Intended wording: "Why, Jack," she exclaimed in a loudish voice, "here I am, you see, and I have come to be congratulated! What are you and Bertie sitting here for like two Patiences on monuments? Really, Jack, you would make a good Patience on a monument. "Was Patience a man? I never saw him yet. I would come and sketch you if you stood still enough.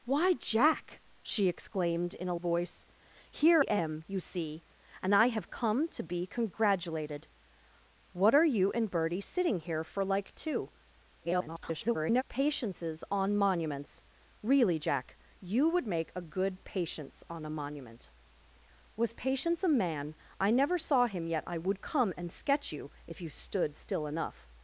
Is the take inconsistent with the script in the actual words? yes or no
yes